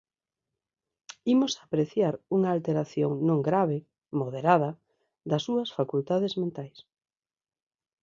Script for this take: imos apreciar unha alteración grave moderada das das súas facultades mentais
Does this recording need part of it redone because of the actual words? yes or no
yes